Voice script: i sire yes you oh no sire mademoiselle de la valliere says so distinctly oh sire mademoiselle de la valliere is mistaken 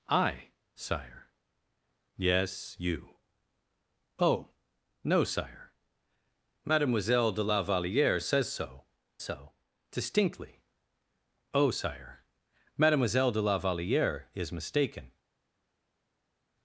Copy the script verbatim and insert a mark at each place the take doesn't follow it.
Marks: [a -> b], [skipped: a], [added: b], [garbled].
i sire yes you oh no sire mademoiselle de la valliere says so [added: so] distinctly oh sire mademoiselle de la valliere is mistaken